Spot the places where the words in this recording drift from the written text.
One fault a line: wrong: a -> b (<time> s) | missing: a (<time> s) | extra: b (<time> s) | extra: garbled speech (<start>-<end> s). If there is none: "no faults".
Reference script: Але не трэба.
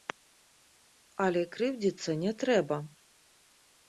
extra: крыўдзіцца (1.6 s)